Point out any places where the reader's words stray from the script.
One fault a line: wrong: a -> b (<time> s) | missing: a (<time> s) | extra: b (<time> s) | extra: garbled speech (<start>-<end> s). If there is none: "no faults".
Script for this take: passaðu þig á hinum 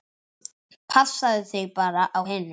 extra: bara (1.8 s)